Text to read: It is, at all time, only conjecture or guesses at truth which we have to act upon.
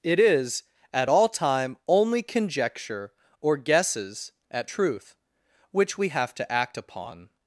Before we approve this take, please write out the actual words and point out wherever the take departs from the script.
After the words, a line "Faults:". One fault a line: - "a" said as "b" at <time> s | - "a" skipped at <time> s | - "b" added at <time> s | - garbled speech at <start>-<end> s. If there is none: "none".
It is, at all time, only conjecture or guesses at truth which we have to act upon.
Faults:
none